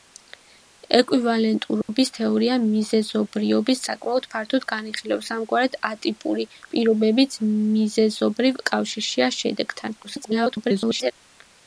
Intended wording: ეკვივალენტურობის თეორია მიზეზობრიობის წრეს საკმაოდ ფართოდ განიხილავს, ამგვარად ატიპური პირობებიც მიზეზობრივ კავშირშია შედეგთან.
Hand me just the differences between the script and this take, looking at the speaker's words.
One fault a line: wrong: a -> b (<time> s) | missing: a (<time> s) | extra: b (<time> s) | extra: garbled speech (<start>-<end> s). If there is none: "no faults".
missing: წრეს (3.8 s)
extra: garbled speech (10.0-11.1 s)